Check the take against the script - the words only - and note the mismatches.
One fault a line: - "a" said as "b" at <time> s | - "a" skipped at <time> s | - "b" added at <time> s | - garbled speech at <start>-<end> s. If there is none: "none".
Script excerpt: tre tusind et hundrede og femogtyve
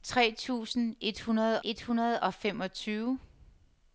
- "et hundrede" added at 1.6 s